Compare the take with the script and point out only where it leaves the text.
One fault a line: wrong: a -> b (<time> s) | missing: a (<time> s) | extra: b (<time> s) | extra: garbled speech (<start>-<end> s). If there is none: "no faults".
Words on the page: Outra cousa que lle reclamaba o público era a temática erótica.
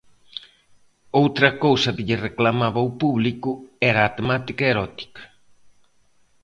no faults